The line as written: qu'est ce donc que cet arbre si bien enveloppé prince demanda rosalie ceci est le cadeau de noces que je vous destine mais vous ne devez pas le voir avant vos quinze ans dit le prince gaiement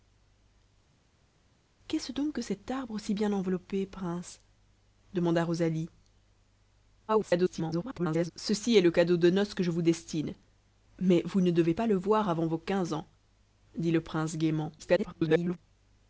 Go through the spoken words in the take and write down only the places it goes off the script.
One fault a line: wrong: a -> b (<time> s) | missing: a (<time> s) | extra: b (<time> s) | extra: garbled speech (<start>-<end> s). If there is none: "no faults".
extra: garbled speech (7.1-8.3 s)
extra: garbled speech (14.8-15.6 s)